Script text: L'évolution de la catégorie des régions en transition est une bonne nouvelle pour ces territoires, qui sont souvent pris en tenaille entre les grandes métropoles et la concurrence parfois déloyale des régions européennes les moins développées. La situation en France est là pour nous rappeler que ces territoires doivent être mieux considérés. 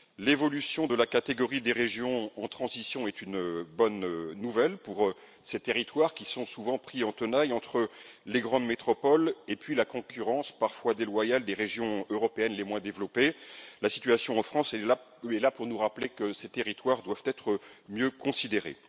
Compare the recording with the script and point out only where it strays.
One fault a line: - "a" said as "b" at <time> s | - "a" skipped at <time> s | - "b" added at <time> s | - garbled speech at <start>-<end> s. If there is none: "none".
none